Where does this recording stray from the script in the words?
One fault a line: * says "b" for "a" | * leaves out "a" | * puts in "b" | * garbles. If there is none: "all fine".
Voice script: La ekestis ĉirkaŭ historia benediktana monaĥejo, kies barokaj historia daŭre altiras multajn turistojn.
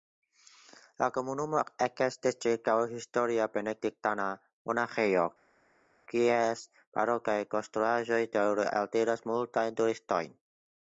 * puts in "komunumo"
* says "konstruaĵoj" for "historia"